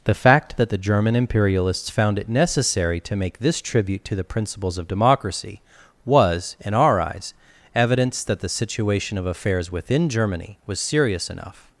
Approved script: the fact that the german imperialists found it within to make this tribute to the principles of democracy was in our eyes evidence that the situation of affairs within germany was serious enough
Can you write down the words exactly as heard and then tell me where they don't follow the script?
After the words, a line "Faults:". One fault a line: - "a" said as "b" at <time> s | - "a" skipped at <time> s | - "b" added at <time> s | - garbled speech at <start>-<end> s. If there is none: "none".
the fact that the german imperialists found it necessary to make this tribute to the principles of democracy was in our eyes evidence that the situation of affairs within germany was serious enough
Faults:
- "within" said as "necessary" at 2.3 s